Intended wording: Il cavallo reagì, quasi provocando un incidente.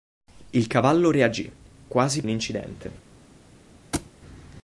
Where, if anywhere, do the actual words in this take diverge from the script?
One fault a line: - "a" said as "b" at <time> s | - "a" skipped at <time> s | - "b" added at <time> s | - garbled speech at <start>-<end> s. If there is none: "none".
- "provocando" skipped at 2.2 s